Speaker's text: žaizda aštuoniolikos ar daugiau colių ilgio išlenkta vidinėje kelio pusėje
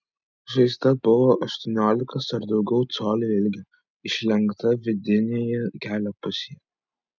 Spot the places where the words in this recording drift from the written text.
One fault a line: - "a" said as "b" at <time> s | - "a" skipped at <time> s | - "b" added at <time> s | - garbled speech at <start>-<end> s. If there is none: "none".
- "buvo" added at 1.1 s